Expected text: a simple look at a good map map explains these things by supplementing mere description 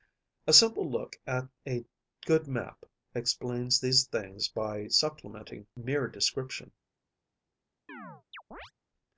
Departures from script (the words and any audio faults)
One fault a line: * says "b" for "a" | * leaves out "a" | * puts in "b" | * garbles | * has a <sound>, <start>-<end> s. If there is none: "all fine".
* leaves out "map"
* has a chirp, 7.9-8.7 s